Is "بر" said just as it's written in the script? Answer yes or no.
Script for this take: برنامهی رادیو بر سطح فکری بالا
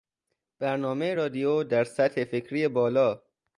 no